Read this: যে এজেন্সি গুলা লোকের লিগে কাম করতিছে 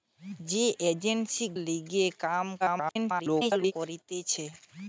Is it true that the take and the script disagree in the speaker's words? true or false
true